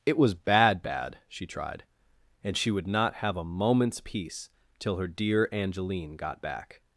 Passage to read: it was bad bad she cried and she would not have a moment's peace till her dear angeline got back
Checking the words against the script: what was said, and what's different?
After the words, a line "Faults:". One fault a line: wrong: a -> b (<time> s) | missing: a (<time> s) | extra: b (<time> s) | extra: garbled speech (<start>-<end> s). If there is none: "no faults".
it was bad bad she tried and she would not have a moment's peace till her dear angeline got back
Faults:
wrong: cried -> tried (1.5 s)